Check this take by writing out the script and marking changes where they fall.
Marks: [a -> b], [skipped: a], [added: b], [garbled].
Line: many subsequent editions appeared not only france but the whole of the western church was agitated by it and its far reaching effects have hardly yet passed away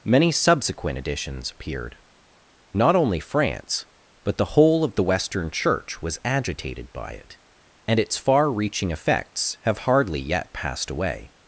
many subsequent editions appeared not only france but the whole of the western church was agitated by it and its far reaching effects have hardly yet passed away